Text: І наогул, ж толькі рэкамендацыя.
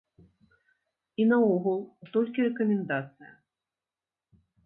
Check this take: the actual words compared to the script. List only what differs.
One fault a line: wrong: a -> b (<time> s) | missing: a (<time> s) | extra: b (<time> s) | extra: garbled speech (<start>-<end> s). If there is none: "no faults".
no faults